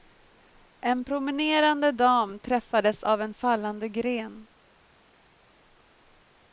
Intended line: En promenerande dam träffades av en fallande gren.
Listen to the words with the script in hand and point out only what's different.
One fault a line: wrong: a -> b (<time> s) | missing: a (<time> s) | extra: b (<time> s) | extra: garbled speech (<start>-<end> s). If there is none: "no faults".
no faults